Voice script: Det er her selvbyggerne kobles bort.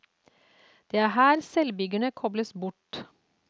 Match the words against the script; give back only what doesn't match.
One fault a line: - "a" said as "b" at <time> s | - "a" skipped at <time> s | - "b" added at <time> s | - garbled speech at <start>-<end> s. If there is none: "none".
none